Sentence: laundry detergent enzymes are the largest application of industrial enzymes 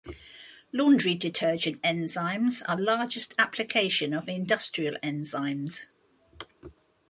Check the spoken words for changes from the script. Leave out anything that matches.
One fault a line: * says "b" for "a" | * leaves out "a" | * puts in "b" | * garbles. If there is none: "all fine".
* leaves out "the"